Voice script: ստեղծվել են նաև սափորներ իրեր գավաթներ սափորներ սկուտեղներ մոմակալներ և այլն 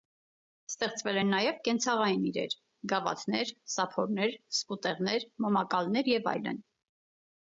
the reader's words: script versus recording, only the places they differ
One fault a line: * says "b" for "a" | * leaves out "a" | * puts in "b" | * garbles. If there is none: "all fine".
* says "կենցաղային" for "սափորներ"